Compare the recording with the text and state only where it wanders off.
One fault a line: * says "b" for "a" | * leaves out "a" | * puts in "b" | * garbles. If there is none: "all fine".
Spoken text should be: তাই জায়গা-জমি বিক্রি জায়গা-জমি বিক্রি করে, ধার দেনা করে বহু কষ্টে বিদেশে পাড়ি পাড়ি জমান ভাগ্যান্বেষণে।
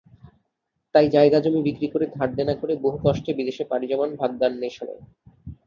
* leaves out "জায়গা-জমি বিক্রি"
* leaves out "পাড়ি"